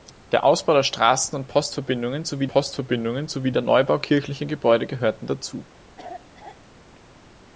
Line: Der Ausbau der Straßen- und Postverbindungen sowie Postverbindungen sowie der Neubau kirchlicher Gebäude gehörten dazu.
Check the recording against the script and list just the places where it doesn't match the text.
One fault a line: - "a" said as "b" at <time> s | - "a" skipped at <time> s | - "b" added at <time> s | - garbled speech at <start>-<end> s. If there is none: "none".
none